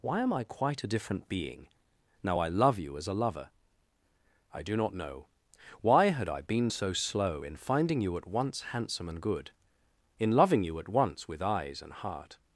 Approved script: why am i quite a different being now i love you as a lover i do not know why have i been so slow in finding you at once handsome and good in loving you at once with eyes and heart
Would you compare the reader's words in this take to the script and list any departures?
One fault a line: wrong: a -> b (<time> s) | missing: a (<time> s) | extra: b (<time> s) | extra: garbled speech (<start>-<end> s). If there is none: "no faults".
wrong: have -> had (6.1 s)